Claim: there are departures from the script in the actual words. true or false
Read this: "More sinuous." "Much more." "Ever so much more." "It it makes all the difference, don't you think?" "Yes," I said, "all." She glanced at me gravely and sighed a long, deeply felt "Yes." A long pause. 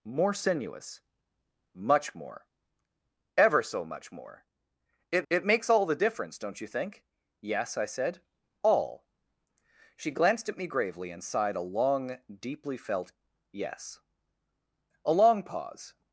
false